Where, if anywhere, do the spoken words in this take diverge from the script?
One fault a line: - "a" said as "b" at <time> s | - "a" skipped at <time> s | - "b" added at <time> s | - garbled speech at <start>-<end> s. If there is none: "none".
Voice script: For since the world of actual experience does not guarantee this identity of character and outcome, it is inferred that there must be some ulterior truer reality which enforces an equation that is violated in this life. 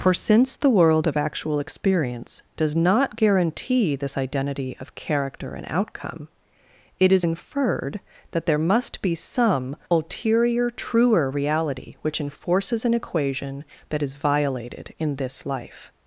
none